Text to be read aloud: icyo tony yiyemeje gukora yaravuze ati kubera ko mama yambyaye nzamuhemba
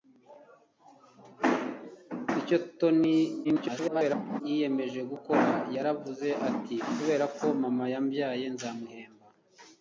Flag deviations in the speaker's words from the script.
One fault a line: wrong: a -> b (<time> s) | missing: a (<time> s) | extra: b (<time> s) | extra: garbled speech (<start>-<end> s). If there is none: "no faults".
extra: garbled speech (3.4-4.4 s)